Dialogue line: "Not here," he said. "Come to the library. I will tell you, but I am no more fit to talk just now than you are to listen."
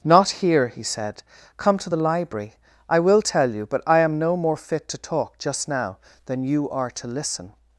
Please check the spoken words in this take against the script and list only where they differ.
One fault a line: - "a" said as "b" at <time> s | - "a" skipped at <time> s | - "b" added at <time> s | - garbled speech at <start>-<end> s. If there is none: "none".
none